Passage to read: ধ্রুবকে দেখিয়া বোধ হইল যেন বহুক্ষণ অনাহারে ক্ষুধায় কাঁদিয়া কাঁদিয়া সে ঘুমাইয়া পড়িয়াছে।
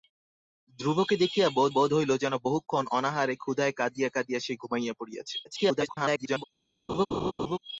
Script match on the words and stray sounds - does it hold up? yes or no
no